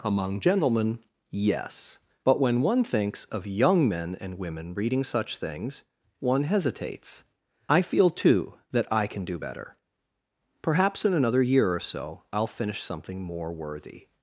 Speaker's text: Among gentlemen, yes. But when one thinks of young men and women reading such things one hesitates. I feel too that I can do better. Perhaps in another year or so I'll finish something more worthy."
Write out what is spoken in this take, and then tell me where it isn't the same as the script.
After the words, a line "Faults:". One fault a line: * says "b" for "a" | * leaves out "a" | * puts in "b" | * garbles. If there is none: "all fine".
Among gentlemen, yes. But when one thinks of young men and women reading such things one hesitates. I feel too that I can do better. Perhaps in another year or so I'll finish something more worthy."
Faults:
all fine